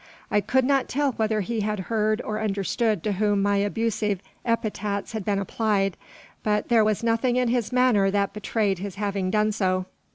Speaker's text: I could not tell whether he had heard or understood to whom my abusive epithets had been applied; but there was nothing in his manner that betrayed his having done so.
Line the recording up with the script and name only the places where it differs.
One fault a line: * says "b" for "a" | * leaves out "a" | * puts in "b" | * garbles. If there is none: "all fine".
all fine